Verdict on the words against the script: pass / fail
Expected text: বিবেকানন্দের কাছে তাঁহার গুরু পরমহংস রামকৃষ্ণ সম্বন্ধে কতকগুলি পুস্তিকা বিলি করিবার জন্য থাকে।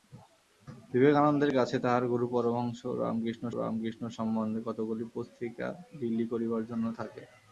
fail